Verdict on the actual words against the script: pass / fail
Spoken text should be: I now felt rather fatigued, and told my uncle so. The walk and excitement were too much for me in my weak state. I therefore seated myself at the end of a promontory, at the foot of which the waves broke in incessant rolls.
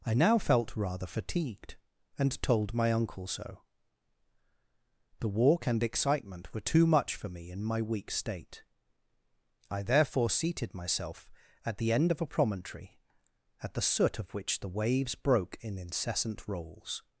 fail